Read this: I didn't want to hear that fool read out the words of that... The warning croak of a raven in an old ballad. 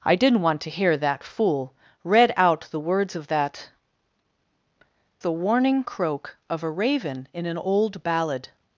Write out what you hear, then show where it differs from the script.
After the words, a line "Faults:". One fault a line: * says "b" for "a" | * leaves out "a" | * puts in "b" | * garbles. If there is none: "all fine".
I didn't want to hear that fool read out the words of that... The warning croak of a raven in an old ballad.
Faults:
all fine